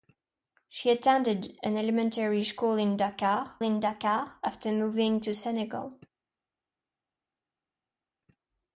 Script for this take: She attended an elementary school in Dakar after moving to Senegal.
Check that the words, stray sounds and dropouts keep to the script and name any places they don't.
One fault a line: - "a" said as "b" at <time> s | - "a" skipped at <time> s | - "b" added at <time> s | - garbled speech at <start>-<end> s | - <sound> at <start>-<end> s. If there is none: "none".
- "in Dakar" added at 3.6 s